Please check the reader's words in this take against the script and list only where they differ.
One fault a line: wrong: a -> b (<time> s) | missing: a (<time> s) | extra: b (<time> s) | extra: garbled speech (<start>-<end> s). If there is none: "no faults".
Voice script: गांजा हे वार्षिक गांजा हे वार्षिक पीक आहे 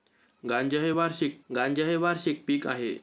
no faults